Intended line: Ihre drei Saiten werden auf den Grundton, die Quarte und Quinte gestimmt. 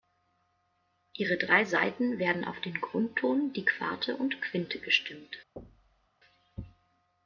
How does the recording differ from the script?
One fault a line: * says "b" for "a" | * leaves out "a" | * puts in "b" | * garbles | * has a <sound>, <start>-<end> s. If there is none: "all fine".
* has a thud, 5.6-6.1 s